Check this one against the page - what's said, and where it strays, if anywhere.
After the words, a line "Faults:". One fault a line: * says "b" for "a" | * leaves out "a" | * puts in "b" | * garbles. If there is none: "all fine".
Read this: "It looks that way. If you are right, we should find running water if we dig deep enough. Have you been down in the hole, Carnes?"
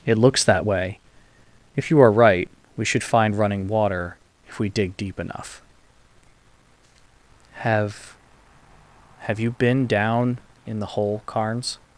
"It looks that way. If you are right, we should find running water if we dig deep enough. Have Have you been down in the hole, Carnes?"
Faults:
* puts in "Have"